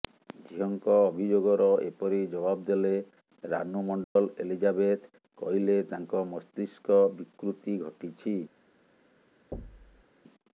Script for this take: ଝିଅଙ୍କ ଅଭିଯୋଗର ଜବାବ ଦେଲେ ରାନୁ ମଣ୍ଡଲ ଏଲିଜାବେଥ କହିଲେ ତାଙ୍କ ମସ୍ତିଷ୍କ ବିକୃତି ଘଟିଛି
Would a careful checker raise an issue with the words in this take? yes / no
yes